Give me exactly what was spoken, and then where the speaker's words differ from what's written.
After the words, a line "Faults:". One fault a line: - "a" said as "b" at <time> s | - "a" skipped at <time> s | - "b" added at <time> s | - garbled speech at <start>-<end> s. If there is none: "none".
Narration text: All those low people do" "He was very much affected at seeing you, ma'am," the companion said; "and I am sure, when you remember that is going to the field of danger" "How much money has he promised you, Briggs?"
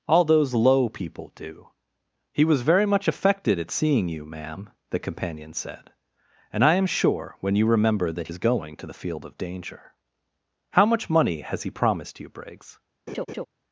All those low people do" "He was very much affected at seeing you, ma'am," the companion said; "and I am sure, when you remember that is going to the field of danger" "How much money has he promised you, Briggs?"
Faults:
none